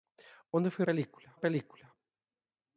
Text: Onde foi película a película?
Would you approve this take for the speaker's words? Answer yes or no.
yes